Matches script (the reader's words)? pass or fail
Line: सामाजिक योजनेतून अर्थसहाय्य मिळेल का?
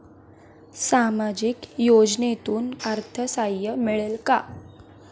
pass